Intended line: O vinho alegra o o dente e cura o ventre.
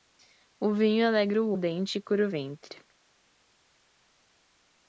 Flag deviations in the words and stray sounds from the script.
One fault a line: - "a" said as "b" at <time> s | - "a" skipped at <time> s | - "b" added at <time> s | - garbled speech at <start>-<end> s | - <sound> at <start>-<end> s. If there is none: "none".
none